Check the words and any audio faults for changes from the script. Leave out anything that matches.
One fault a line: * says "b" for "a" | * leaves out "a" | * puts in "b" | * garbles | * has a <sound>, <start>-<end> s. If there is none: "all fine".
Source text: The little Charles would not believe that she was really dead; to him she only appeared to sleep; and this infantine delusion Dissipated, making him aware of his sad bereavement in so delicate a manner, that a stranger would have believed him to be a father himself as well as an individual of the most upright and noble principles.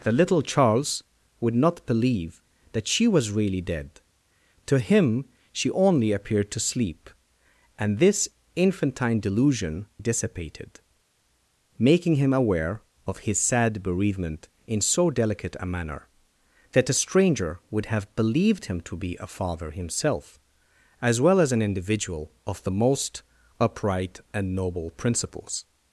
all fine